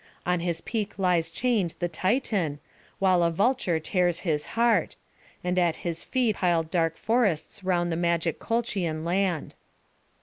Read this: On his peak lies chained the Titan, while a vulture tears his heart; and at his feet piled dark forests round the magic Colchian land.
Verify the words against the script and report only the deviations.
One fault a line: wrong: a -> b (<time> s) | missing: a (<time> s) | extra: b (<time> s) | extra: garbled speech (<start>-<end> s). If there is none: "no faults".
no faults